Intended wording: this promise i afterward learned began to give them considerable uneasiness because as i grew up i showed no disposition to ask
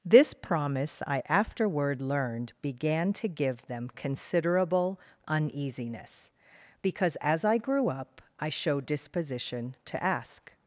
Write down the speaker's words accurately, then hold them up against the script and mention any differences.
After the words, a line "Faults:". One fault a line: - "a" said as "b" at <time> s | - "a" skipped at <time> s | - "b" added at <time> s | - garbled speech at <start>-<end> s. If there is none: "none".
this promise i afterward learned began to give them considerable uneasiness because as i grew up i showed disposition to ask
Faults:
- "no" skipped at 8.9 s